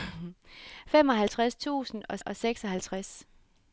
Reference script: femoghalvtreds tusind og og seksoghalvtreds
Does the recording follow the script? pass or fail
pass